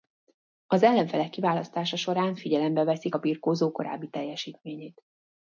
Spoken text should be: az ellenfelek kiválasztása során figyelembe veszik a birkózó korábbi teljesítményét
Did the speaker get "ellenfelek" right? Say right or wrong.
right